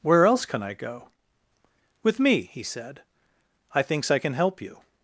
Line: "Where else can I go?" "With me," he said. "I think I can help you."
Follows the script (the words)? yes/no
no